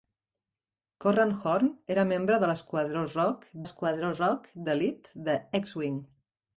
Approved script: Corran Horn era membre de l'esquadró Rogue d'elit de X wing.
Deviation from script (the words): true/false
true